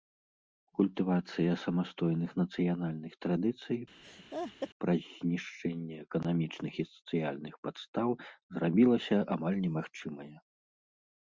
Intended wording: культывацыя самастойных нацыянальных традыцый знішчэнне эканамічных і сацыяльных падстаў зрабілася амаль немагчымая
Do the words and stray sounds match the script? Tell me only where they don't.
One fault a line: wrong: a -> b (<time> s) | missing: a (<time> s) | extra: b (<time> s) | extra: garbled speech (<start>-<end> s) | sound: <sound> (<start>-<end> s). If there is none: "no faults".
sound: laugh (4.0-4.7 s)
extra: праз (4.8 s)